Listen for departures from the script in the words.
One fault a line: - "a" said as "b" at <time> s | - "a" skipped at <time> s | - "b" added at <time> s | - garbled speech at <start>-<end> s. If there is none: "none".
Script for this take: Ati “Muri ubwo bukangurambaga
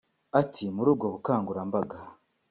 none